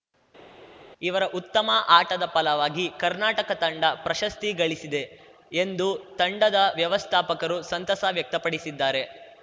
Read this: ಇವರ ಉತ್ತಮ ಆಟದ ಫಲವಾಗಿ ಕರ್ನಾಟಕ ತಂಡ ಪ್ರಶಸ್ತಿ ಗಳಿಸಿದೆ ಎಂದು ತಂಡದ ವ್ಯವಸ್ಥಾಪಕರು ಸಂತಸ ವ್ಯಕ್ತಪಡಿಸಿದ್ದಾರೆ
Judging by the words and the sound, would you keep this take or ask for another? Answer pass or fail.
pass